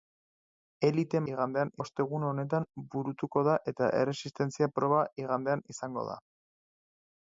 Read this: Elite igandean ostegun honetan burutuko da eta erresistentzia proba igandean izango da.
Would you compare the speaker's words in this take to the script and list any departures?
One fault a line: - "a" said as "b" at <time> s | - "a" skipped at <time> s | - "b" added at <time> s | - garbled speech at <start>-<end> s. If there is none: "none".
none